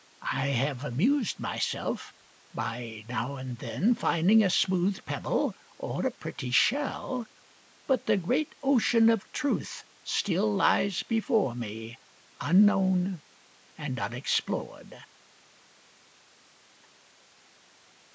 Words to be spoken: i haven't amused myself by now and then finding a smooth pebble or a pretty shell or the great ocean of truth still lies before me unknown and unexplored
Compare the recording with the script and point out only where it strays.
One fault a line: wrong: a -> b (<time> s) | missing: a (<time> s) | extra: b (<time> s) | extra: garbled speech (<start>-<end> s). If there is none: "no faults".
wrong: haven't -> have (0.5 s)
wrong: or -> but (7.8 s)